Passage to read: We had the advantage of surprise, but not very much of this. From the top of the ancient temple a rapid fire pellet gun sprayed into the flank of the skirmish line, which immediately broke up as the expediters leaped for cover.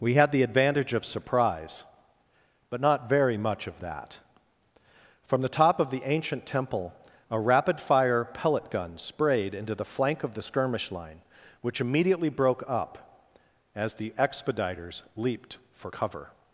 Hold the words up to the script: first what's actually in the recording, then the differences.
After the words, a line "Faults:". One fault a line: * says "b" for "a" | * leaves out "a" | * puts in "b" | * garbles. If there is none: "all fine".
We had the advantage of surprise, but not very much of that. From the top of the ancient temple a rapid fire pellet gun sprayed into the flank of the skirmish line, which immediately broke up as the expediters leaped for cover.
Faults:
* says "that" for "this"